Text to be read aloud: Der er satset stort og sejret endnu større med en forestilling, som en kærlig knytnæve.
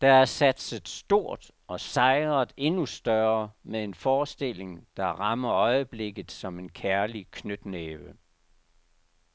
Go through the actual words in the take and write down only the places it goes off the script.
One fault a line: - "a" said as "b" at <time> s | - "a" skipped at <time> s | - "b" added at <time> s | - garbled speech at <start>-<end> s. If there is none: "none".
- "der rammer øjeblikket" added at 5.0 s